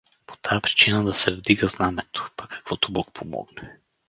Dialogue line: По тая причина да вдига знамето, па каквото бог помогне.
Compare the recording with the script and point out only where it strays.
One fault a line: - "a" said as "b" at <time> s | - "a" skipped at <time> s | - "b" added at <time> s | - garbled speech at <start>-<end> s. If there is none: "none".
- "се" added at 1.1 s